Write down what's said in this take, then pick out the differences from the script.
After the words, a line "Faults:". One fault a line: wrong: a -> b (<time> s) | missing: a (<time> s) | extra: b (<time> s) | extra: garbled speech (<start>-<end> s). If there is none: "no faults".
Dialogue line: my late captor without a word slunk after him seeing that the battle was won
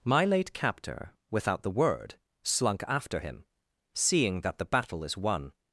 my late captor without the word slunk after him seeing that the battle is won
Faults:
wrong: a -> the (1.6 s)
wrong: was -> is (5.0 s)